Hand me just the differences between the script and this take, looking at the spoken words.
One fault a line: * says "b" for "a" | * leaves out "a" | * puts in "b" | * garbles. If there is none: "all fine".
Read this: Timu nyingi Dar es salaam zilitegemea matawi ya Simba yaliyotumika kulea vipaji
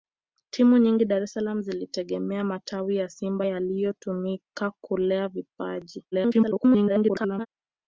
* garbles